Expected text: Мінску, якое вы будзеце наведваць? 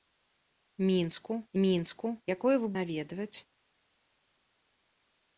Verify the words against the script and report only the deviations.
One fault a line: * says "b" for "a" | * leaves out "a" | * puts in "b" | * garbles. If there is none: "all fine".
* puts in "мінску"
* leaves out "будзеце"